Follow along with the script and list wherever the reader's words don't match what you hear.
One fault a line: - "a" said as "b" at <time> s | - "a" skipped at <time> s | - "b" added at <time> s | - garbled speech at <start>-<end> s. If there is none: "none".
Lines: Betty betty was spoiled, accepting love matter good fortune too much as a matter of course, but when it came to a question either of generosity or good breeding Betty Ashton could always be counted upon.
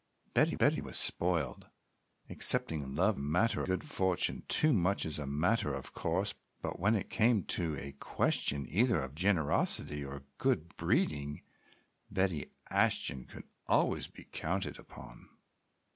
none